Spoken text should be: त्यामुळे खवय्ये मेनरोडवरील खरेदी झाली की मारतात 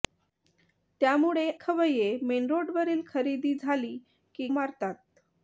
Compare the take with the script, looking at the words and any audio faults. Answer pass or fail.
pass